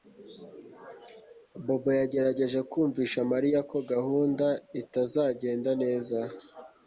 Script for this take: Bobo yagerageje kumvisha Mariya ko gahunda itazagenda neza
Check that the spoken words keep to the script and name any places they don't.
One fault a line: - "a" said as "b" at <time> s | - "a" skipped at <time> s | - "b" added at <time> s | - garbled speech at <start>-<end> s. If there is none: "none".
none